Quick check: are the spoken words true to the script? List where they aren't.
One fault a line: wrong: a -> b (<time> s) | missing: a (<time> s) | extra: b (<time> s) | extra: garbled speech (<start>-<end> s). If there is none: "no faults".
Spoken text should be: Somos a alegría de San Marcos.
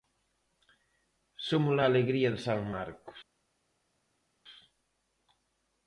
no faults